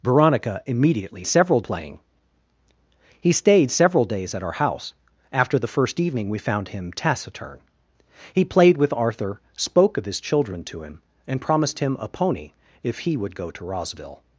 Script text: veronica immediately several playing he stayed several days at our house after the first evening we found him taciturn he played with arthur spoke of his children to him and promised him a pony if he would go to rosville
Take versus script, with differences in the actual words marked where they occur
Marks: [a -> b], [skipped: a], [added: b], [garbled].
veronica immediately several playing he stayed several days at our house after the first evening we found him taciturn he played with arthur spoke of his children to him and promised him a pony if he would go to rosville